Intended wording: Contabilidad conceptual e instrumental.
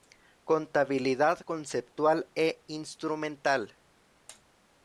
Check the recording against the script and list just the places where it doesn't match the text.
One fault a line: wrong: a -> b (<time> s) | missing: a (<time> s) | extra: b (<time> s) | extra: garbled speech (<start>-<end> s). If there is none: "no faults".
no faults